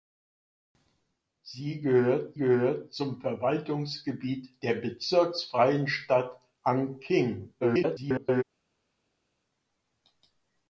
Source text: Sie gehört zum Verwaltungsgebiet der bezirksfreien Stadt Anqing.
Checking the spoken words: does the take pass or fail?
fail